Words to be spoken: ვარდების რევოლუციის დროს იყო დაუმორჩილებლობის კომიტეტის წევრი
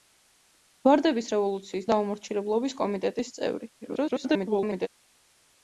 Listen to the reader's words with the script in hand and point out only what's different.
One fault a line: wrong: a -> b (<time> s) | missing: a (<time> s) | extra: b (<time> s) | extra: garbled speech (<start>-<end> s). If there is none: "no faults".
missing: დროს იყო (1.9 s)
extra: garbled speech (3.8-4.9 s)